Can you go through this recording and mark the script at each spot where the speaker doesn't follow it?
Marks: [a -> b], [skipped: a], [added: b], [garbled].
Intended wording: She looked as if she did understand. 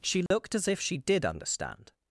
She looked as if she did understand.